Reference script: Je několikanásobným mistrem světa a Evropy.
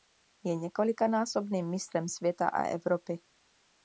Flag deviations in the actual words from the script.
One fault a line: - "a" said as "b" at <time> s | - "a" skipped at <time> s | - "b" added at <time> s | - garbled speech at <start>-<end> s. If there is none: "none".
none